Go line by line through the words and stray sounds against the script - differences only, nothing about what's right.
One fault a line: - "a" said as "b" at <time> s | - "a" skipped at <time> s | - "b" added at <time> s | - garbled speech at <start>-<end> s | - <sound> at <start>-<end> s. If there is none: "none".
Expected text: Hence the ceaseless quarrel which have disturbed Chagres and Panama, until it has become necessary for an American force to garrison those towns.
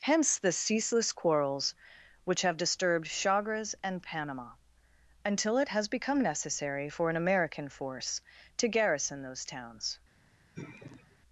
- "quarrel" said as "quarrels" at 1.1 s
- sigh at 10.6-11.2 s